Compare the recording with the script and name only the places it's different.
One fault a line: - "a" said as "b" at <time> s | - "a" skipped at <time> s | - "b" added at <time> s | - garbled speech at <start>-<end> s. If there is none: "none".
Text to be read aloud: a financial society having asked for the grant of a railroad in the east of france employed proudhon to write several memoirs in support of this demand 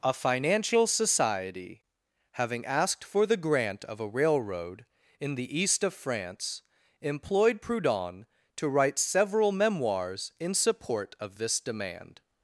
none